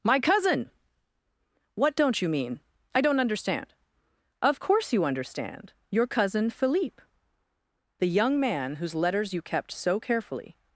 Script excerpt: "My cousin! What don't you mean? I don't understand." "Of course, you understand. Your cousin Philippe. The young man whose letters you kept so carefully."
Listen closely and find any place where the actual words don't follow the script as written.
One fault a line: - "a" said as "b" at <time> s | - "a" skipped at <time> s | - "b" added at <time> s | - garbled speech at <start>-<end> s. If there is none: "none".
none